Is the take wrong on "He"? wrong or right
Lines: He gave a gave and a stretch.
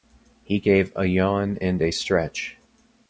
right